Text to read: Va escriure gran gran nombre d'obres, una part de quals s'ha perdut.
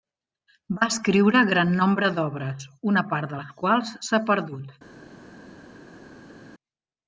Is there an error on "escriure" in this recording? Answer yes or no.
no